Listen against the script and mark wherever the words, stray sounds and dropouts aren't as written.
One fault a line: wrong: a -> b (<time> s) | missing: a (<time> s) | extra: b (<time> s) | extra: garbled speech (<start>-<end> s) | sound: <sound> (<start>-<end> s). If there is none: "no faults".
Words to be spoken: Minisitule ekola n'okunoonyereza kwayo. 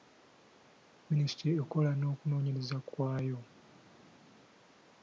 no faults